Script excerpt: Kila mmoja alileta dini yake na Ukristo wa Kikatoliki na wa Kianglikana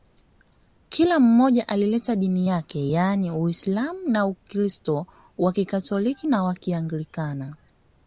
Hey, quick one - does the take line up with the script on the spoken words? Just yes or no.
no